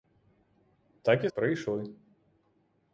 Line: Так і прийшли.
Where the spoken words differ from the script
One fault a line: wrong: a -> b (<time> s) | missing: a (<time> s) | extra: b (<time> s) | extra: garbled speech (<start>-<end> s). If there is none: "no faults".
no faults